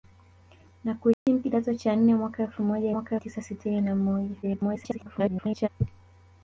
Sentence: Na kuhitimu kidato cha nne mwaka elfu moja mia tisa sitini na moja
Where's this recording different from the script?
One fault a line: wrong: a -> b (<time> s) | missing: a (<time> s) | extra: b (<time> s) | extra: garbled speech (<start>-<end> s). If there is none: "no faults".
wrong: mia -> mwaka (2.9 s)
extra: garbled speech (4.4-5.7 s)